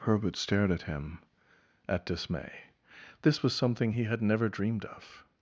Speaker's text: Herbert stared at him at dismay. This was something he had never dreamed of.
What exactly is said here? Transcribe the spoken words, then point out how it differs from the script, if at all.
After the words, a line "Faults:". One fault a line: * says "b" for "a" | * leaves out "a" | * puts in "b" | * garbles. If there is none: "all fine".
Herbert stared at him at dismay. This was something he had never dreamed of.
Faults:
all fine